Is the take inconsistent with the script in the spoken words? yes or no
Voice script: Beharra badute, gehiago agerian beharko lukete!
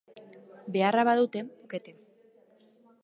yes